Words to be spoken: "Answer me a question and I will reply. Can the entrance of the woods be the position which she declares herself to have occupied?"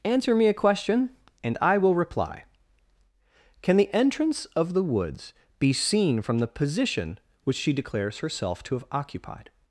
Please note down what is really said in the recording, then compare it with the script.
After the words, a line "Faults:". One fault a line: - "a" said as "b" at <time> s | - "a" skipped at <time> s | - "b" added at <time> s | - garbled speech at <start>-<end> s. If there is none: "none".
"Answer me a question and I will reply. Can the entrance of the woods be seen from the position which she declares herself to have occupied?"
Faults:
- "seen from" added at 5.7 s